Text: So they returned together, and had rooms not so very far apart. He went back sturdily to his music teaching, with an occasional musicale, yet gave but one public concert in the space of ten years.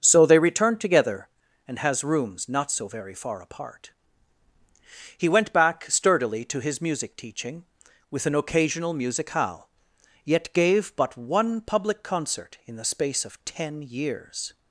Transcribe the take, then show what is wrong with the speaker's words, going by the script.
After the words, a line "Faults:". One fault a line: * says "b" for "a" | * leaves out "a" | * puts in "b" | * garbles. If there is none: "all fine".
So they returned together, and has rooms not so very far apart. He went back sturdily to his music teaching, with an occasional musicale, yet gave but one public concert in the space of ten years.
Faults:
* says "has" for "had"